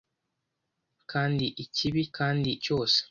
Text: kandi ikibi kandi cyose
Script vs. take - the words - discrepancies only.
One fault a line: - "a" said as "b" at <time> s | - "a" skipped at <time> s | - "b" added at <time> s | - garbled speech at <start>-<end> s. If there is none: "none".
none